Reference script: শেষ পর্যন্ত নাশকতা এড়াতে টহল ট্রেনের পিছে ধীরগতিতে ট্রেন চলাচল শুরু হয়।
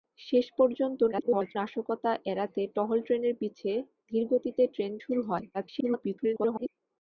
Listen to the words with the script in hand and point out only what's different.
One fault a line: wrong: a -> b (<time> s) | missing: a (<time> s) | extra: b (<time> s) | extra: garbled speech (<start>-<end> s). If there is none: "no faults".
extra: garbled speech (1.1-1.6 s)
missing: চলাচল (4.9 s)
extra: garbled speech (5.5-6.7 s)